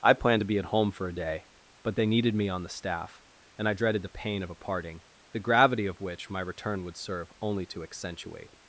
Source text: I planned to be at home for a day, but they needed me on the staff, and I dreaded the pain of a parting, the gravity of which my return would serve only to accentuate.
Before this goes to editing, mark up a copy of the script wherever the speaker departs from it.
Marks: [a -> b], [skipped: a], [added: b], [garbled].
I planned to be at home for a day, but they needed me on the staff, and I dreaded the pain of a parting, the gravity of which my return would serve only to accentuate.